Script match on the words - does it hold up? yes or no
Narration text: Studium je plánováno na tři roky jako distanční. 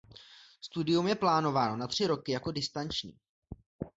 yes